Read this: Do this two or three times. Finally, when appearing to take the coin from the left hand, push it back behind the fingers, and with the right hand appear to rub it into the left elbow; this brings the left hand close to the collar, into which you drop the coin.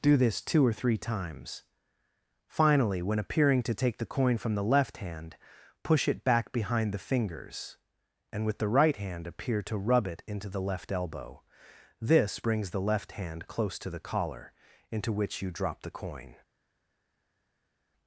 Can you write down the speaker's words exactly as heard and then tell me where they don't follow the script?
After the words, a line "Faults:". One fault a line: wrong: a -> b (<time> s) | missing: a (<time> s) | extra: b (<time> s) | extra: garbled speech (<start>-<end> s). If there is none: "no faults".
Do this two or three times. Finally, when appearing to take the coin from the left hand, push it back behind the fingers, and with the right hand appear to rub it into the left elbow; this brings the left hand close to the collar, into which you drop the coin.
Faults:
no faults